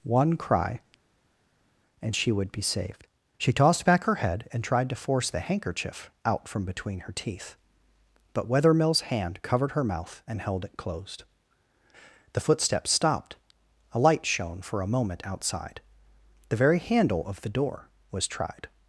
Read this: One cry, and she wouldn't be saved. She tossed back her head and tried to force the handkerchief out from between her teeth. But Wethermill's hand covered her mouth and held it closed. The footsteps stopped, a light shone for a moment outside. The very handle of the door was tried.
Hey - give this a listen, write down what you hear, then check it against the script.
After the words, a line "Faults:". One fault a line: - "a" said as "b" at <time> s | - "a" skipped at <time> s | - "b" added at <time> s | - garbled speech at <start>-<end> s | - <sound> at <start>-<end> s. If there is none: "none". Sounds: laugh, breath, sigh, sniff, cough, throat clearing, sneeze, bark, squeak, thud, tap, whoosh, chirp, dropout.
One cry, and she would be saved. She tossed back her head and tried to force the handkerchief out from between her teeth. But Wethermill's hand covered her mouth and held it closed. The footsteps stopped, a light shone for a moment outside. The very handle of the door was tried.
Faults:
- "wouldn't" said as "would" at 2.3 s